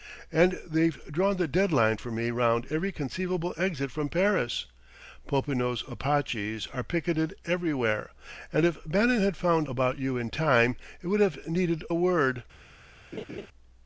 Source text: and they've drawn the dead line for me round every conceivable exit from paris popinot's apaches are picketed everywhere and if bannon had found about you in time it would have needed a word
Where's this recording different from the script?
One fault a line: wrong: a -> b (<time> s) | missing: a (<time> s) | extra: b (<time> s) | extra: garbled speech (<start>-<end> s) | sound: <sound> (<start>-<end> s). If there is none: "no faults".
sound: laugh (13.1-13.5 s)